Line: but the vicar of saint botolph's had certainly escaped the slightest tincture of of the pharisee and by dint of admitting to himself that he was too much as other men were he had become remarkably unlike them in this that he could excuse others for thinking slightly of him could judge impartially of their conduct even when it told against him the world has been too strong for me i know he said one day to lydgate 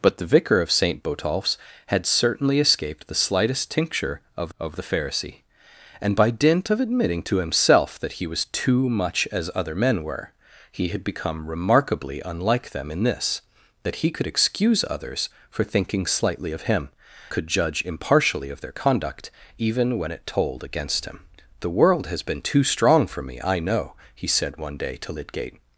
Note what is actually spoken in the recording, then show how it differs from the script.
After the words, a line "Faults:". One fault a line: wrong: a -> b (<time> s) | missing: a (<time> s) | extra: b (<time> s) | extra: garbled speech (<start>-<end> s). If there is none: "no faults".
but the vicar of saint botolph's had certainly escaped the slightest tincture of of the pharisee and by dint of admitting to himself that he was too much as other men were he had become remarkably unlike them in this that he could excuse others for thinking slightly of him could judge impartially of their conduct even when it told against him the world has been too strong for me i know he said one day to lydgate
Faults:
no faults